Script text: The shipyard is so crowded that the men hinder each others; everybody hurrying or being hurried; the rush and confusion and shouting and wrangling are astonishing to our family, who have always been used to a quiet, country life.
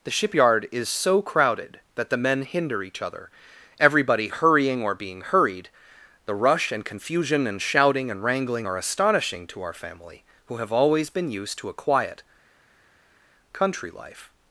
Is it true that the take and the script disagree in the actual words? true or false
true